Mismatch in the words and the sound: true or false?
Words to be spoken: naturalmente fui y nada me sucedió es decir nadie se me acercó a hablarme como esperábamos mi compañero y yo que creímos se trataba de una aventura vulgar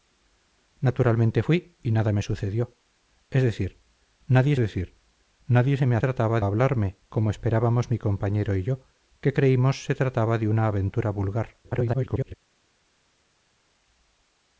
true